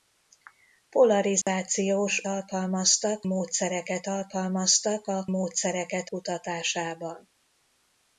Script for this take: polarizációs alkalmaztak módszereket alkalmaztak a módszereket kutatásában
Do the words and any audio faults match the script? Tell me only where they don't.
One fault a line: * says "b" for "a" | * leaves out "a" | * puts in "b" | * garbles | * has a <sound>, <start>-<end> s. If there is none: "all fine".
* has a dropout, 1.4-1.5 s